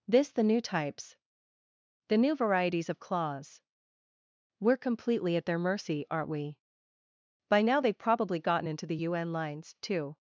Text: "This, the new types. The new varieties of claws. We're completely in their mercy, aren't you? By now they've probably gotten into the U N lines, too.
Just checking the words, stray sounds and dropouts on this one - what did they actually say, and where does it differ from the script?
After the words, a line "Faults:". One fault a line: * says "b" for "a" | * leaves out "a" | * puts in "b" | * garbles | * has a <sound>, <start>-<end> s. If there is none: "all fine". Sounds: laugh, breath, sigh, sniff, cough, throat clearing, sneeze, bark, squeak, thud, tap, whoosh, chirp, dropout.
"This, the new types. The new varieties of claws. We're completely at their mercy, aren't we? By now they've probably gotten into the U N lines, too.
Faults:
* says "at" for "in"
* says "we" for "you"